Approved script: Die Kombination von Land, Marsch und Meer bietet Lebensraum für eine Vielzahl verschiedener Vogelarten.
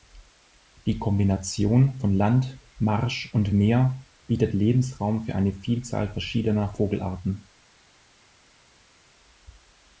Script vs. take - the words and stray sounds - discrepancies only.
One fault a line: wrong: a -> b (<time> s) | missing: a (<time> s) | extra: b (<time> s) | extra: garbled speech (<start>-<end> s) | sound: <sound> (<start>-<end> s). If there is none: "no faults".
no faults